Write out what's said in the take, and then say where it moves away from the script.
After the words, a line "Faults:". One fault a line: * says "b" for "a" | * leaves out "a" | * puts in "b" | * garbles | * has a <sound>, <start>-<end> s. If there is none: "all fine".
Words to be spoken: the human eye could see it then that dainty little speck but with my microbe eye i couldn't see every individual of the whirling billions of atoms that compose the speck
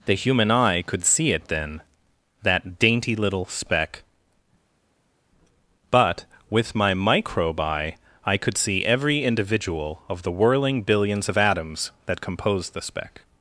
the human eye could see it then that dainty little speck but with my microbe eye i could see every individual of the whirling billions of atoms that compose the speck
Faults:
* says "could" for "couldn't"